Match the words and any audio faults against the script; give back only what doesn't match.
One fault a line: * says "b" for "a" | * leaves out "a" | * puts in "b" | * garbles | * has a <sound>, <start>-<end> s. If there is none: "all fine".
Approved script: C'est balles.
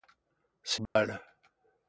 * has a dropout, 0.9-1.0 s